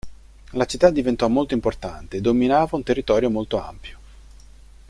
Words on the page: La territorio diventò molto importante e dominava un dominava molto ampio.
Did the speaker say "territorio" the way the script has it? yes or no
no